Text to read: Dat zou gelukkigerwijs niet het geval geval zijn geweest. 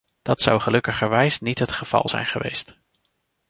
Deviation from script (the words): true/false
true